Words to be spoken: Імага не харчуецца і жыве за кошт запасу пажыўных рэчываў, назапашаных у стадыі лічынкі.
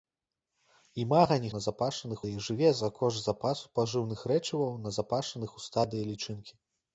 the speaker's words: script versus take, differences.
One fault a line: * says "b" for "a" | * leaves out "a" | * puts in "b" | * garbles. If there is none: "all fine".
* says "назапашаных" for "харчуецца"